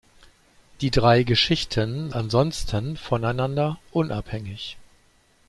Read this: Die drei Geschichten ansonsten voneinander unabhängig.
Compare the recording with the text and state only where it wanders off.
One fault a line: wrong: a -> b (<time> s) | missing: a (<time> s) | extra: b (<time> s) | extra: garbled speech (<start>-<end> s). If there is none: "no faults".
no faults